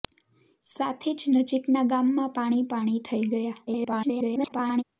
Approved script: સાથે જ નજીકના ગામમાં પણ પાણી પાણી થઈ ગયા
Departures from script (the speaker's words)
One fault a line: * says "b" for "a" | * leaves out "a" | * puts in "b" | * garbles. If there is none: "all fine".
* leaves out "પણ"
* garbles